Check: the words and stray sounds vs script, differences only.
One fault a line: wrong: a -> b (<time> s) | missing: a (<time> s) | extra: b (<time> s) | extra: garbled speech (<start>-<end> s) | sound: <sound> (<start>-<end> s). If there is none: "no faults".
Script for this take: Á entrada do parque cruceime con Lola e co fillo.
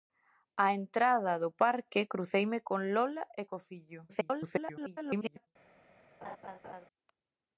extra: garbled speech (4.1-5.5 s)
sound: laugh (6.2-6.8 s)